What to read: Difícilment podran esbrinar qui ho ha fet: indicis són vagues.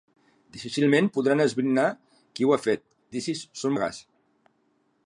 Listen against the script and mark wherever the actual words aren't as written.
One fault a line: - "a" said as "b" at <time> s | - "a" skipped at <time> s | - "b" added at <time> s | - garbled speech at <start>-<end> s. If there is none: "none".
none